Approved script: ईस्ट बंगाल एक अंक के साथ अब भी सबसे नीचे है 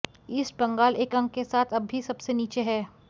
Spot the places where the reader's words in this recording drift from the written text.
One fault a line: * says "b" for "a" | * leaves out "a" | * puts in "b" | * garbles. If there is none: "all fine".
all fine